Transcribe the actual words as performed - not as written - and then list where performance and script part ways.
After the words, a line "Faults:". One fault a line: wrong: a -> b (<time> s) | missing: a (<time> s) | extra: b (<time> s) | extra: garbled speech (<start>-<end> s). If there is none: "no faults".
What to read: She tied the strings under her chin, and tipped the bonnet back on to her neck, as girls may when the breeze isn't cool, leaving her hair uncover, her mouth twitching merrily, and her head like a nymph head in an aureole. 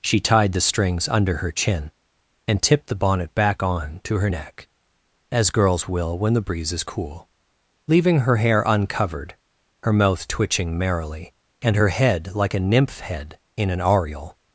She tied the strings under her chin, and tipped the bonnet back on to her neck, as girls will when the breeze is cool, leaving her hair uncovered, her mouth twitching merrily, and her head like a nymph head in an aureole.
Faults:
wrong: may -> will (5.9 s)
wrong: isn't -> is (6.7 s)
wrong: uncover -> uncovered (8.7 s)